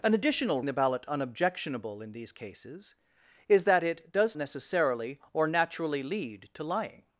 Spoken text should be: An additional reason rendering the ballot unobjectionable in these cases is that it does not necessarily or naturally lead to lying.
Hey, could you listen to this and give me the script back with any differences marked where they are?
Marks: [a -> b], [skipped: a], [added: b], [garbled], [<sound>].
An additional [skipped: reason rendering] the ballot unobjectionable in these cases is that it does [skipped: not] necessarily or naturally lead to lying.